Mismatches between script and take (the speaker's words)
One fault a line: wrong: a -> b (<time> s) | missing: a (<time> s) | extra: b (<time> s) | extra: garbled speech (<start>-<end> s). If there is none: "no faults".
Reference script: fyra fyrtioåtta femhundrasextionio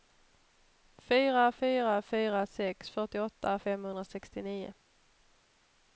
extra: fyra fyra sex (1.6 s)